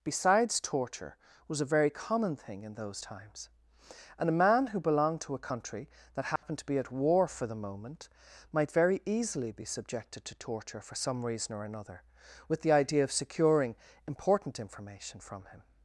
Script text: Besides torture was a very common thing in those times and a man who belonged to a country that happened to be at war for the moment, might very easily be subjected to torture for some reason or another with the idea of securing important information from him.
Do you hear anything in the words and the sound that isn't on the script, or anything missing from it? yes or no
yes